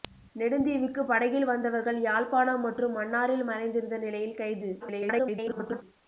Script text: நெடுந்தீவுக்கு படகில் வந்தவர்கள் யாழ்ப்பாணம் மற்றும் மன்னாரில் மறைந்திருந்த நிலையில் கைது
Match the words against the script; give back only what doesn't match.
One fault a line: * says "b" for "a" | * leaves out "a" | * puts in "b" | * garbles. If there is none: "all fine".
* garbles